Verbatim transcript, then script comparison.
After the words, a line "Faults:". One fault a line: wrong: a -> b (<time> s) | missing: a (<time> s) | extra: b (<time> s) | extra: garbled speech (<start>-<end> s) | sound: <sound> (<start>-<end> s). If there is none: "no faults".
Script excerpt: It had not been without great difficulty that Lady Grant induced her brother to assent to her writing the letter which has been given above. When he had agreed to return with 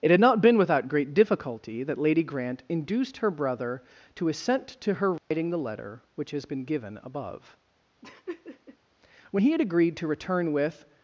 It had not been without great difficulty that Lady Grant induced her brother to assent to her writing the letter which has been given above. When he had agreed to return with
Faults:
sound: dropout (5.2-5.3 s)
sound: laugh (8.0-8.8 s)